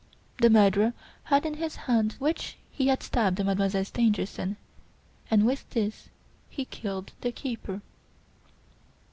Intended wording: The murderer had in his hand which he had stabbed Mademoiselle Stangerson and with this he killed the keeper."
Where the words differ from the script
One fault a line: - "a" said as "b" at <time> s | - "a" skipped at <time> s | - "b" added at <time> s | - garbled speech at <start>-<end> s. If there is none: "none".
none